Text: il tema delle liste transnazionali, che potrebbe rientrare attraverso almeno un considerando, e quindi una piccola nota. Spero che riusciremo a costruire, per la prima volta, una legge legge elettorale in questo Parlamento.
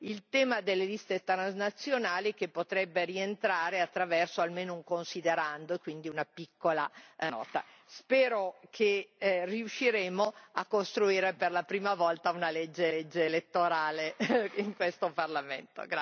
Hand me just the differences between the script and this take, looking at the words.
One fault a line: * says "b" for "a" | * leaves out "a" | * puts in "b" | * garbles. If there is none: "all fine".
all fine